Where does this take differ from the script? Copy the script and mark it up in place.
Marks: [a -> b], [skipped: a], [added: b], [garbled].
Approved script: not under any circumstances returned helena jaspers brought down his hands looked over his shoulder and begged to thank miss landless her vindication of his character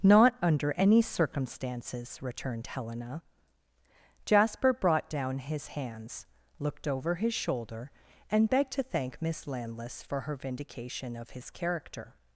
not under any circumstances returned helena [jaspers -> jasper] brought down his hands looked over his shoulder and begged to thank miss landless [added: for] her vindication of his character